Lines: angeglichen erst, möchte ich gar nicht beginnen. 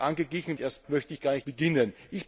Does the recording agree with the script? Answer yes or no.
yes